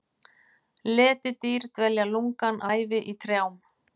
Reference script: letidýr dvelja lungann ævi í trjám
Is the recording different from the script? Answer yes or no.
no